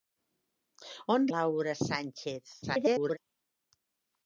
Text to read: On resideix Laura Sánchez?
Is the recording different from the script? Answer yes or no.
yes